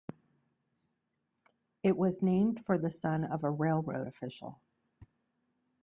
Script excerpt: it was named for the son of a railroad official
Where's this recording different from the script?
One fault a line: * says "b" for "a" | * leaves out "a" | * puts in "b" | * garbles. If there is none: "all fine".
all fine